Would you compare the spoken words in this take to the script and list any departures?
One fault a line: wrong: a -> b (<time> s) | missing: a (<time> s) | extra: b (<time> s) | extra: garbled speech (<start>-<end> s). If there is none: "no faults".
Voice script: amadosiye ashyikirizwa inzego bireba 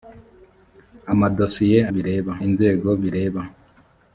wrong: ashyikirizwa -> bireba (1.9 s)